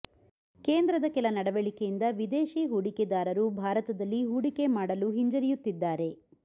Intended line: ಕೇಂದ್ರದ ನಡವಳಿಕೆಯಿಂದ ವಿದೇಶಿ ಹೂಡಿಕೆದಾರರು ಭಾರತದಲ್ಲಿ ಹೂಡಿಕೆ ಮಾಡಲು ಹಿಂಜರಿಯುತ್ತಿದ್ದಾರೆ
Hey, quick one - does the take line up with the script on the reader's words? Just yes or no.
no